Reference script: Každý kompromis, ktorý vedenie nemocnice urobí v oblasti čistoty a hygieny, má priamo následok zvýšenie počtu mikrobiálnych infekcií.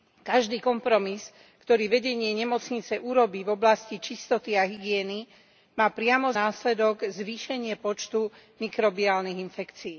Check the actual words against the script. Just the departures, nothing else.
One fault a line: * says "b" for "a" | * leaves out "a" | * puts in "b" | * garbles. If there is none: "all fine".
all fine